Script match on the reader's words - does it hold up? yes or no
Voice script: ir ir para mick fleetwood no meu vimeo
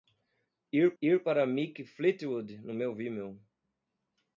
yes